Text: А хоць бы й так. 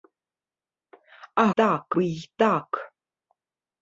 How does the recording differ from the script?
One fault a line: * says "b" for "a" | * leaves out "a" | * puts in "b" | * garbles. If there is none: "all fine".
* says "так" for "хоць"